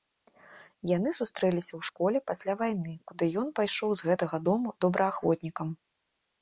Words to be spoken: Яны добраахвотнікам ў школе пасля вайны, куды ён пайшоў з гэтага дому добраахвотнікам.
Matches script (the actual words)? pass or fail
fail